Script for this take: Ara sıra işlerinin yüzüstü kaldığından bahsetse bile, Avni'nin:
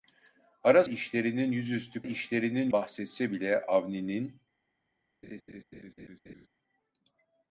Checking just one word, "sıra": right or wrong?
wrong